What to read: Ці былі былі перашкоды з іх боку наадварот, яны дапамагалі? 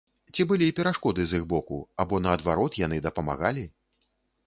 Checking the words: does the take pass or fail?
fail